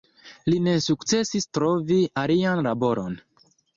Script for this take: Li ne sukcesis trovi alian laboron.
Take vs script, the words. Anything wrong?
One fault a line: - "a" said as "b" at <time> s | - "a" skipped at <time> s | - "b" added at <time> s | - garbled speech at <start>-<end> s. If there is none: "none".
none